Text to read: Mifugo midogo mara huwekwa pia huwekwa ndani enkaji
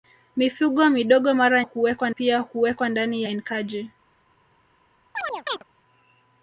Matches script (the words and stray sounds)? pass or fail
fail